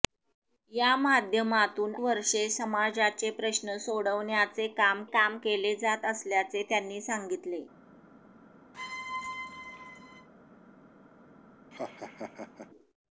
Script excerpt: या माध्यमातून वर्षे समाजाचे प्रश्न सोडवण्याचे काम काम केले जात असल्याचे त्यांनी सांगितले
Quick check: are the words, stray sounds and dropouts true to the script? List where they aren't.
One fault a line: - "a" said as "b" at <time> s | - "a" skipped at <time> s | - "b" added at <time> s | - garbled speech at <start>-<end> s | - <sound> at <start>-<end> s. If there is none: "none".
- squeak at 8.7-10.3 s
- laugh at 11.7-12.7 s